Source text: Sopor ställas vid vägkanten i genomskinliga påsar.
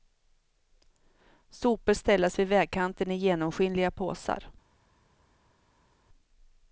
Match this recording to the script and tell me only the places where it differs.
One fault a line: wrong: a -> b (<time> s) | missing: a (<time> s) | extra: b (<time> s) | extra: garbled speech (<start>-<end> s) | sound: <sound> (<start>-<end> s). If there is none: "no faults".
no faults